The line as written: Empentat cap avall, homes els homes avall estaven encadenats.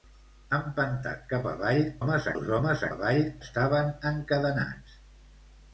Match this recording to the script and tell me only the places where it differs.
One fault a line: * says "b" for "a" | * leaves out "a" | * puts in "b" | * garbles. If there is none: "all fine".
all fine